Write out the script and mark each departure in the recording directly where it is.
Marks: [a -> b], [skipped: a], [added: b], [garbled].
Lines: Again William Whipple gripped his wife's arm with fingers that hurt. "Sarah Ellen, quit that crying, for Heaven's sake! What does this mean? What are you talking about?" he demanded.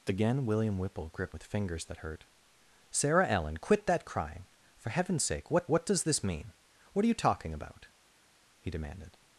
Again William Whipple gripped [skipped: his wife's arm] with fingers that hurt. "Sarah Ellen, quit that crying, for Heaven's sake! What [added: what] does this mean? What are you talking about?" he demanded.